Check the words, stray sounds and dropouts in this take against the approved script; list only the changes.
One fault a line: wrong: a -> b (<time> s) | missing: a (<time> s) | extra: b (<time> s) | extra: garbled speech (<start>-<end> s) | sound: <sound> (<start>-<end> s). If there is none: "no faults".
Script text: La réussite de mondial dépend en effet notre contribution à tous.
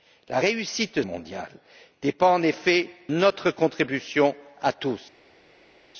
no faults